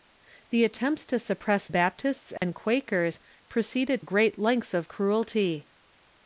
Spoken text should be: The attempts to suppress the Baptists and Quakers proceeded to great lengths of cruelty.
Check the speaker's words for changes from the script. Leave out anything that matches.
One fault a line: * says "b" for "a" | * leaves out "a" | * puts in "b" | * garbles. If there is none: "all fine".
* leaves out "the"
* leaves out "to"